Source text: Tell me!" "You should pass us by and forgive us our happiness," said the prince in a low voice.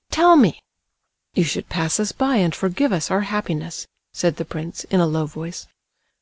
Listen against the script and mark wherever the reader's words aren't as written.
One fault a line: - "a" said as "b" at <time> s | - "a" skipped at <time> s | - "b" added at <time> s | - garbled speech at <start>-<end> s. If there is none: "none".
none